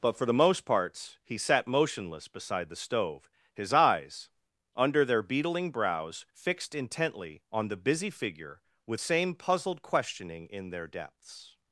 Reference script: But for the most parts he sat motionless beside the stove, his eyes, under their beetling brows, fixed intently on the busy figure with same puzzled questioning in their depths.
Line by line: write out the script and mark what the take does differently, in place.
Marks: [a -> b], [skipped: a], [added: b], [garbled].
But for the most parts he sat motionless beside the stove, his eyes, under their beetling brows, fixed intently on the busy figure with same puzzled questioning in their depths.